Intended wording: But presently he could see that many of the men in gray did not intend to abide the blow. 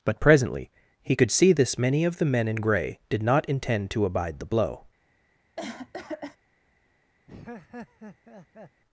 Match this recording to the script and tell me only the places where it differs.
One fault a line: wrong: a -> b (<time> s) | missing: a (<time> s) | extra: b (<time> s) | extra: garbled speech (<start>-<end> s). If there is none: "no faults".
wrong: that -> this (1.5 s)